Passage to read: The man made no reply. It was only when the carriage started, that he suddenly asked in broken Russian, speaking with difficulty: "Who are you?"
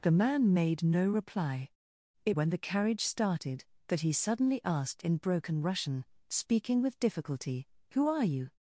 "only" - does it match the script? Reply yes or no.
no